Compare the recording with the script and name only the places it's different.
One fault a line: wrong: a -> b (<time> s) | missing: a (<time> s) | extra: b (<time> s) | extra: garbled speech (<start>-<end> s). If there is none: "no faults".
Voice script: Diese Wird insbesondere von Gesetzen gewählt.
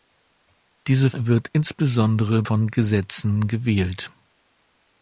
no faults